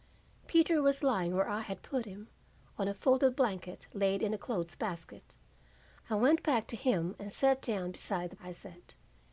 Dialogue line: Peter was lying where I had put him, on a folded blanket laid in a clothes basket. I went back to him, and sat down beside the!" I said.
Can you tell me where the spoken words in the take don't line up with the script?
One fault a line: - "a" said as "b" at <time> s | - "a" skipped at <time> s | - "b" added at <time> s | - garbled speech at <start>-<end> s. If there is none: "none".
none